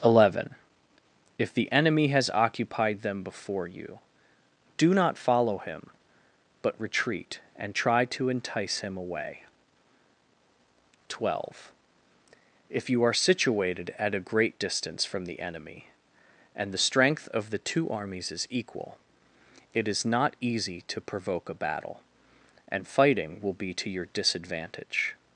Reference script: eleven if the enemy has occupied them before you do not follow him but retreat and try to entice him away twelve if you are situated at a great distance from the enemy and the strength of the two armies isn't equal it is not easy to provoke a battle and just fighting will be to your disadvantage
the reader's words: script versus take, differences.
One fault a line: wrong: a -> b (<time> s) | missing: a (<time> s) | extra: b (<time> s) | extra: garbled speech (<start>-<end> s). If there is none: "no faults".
wrong: isn't -> is (18.3 s)
missing: just (22.9 s)